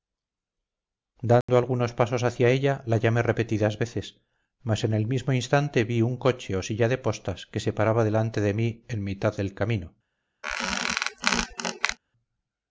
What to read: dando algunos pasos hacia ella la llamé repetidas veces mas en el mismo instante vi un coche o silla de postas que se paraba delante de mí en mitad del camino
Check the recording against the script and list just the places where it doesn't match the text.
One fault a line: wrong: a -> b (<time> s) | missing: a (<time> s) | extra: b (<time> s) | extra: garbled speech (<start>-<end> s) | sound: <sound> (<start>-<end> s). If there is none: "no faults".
sound: dropout (1.4-1.5 s)
sound: squeak (10.4-12.0 s)